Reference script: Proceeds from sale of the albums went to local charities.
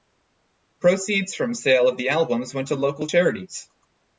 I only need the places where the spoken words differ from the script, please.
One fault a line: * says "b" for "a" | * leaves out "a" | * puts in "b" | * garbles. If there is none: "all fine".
all fine